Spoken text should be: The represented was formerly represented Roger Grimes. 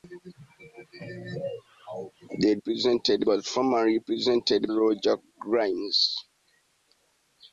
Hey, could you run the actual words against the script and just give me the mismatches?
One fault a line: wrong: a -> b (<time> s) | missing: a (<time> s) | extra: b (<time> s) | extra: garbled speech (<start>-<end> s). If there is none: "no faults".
no faults